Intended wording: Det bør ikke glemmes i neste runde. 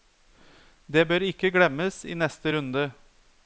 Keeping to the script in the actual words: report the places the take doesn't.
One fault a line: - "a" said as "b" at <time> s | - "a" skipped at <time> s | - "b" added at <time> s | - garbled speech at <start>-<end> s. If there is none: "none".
none